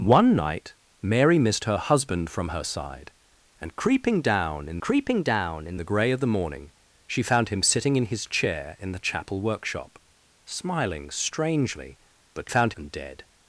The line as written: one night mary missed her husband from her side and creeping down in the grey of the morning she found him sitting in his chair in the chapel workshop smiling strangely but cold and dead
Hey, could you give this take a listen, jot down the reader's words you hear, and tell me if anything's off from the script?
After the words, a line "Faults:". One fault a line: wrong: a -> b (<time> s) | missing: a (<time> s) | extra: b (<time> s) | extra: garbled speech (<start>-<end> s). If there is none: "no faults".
one night mary missed her husband from her side and creeping down in creeping down in the grey of the morning she found him sitting in his chair in the chapel workshop smiling strangely but found and dead
Faults:
extra: creeping down in (4.8 s)
wrong: cold -> found (12.5 s)